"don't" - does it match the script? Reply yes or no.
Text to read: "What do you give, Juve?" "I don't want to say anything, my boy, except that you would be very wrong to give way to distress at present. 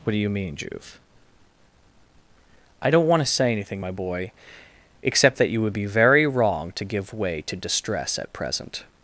yes